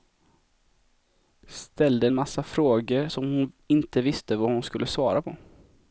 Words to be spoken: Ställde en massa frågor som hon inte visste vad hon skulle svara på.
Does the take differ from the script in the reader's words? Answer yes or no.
no